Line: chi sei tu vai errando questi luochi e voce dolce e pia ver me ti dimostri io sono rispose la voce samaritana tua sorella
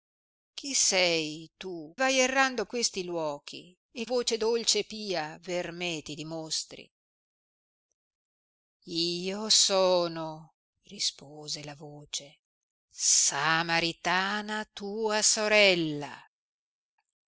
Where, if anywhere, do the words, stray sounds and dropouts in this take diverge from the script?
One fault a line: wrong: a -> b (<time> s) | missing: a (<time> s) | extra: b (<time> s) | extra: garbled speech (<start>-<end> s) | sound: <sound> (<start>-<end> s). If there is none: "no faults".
no faults